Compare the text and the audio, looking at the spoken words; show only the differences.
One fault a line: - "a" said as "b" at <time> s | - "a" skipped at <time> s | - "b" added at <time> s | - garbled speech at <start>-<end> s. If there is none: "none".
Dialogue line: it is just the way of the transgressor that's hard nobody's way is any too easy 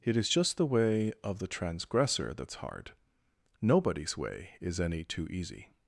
none